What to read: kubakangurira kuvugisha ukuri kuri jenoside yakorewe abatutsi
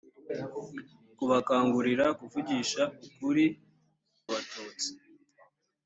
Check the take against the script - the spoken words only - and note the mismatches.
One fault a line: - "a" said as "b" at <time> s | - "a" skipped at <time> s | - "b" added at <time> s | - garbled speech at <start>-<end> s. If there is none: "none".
- "kuri jenoside yakorewe" skipped at 3.5 s